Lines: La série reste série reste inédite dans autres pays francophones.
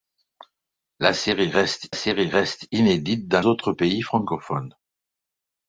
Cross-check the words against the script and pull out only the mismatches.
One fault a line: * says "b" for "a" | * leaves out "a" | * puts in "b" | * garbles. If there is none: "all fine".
all fine